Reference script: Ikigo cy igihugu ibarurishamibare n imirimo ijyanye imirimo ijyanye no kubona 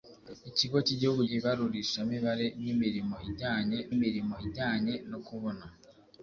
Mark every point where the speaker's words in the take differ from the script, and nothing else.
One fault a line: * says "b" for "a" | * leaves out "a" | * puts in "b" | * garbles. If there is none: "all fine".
all fine